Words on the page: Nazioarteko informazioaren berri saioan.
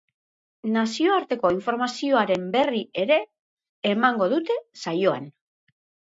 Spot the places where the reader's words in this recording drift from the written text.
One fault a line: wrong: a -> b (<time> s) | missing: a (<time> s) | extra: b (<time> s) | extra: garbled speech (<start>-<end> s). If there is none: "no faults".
extra: ere emango dute (3.0 s)